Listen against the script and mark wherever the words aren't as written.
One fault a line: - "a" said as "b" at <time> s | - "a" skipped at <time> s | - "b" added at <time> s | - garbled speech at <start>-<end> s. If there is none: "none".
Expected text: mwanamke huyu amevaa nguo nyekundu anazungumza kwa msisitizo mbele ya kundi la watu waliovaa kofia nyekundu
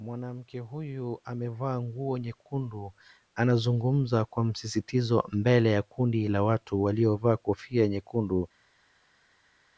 none